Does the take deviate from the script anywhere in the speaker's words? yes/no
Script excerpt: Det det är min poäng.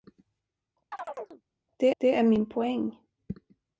no